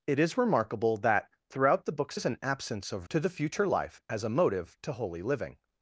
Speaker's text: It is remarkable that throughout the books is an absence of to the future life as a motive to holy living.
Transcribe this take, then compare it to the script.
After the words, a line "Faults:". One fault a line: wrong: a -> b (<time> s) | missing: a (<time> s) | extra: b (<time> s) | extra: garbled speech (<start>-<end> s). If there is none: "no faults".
It is remarkable that throughout the books is an absence of to the future life as a motive to holy living.
Faults:
no faults